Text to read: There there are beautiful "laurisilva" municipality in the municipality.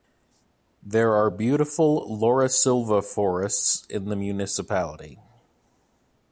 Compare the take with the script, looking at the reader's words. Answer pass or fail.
fail